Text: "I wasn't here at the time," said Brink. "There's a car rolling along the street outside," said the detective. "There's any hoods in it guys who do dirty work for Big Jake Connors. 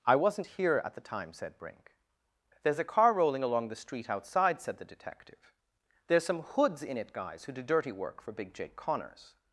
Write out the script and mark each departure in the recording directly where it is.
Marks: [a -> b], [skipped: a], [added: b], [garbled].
"I wasn't here at the time," said Brink. "There's a car rolling along the street outside," said the detective. "There's [any -> some] hoods in it guys who do dirty work for Big Jake Connors.